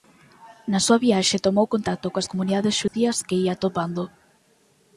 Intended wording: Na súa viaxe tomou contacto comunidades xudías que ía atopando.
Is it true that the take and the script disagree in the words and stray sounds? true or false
true